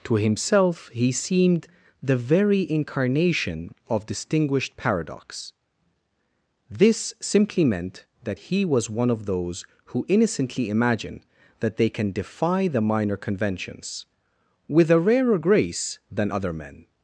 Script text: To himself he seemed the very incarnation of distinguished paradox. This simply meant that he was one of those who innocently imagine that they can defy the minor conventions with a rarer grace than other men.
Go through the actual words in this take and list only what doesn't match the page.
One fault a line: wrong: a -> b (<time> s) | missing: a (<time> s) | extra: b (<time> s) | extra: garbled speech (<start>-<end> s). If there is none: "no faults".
no faults